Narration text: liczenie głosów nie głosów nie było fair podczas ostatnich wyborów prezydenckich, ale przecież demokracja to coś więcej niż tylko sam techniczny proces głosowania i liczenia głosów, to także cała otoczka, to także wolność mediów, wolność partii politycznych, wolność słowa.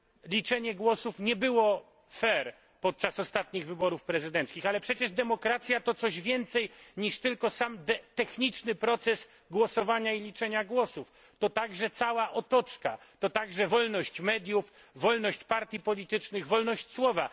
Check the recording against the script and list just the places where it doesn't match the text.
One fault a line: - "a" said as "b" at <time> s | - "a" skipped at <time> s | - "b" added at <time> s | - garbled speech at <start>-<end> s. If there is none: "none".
- "głosów nie" skipped at 1.4 s